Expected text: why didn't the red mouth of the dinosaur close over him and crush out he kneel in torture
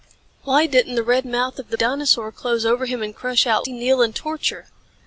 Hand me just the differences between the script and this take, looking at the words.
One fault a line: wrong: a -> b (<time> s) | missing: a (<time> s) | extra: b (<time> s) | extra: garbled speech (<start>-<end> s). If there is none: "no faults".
no faults